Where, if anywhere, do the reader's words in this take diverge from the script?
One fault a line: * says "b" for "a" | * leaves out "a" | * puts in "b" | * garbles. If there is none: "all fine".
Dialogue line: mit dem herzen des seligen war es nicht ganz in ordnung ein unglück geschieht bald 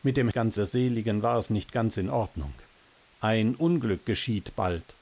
* says "ganz" for "herzen"